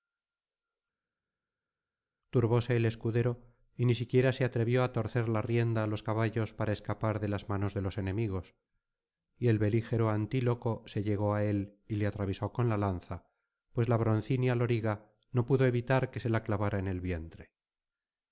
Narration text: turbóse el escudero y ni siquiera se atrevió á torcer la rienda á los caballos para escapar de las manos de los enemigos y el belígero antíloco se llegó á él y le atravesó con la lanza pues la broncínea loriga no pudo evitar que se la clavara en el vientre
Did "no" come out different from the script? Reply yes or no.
no